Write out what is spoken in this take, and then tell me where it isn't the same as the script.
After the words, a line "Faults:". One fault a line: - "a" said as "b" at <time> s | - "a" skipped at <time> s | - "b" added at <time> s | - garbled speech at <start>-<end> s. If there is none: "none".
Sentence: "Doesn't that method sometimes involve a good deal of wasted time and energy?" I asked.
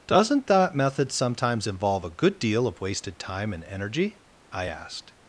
"Doesn't that method sometimes involve a good deal of wasted time and energy?" I asked.
Faults:
none